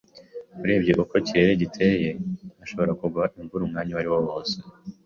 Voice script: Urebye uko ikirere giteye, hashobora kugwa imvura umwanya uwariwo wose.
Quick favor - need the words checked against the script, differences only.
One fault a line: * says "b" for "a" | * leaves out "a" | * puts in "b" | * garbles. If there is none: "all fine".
all fine